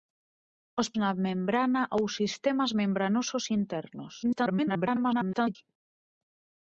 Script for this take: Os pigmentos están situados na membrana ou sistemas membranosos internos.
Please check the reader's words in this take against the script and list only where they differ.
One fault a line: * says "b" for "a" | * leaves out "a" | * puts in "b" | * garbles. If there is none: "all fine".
* leaves out "pigmentos están situados"
* garbles